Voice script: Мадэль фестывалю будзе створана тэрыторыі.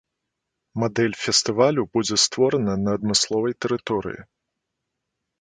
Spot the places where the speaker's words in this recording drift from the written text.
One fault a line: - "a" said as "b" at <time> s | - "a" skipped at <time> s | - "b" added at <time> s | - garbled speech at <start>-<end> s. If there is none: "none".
- "на адмысловай" added at 2.9 s